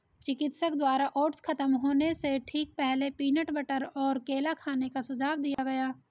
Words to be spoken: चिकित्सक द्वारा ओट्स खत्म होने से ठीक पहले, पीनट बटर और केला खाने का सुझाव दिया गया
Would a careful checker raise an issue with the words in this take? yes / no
no